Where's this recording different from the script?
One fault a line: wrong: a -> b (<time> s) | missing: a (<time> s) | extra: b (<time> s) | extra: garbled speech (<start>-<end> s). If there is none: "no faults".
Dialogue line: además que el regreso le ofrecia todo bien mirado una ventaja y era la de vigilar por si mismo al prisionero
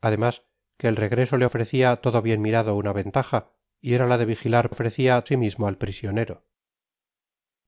wrong: por -> ofrecia (4.7 s)